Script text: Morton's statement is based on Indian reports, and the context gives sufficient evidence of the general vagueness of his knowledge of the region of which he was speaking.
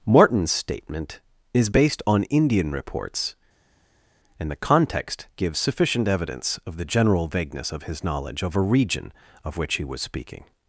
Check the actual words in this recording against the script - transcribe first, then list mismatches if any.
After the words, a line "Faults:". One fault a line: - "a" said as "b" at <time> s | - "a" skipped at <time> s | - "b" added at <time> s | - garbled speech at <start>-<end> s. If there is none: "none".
Morton's statement is based on Indian reports, and the context gives sufficient evidence of the general vagueness of his knowledge of a region of which he was speaking.
Faults:
- "the" said as "a" at 8.6 s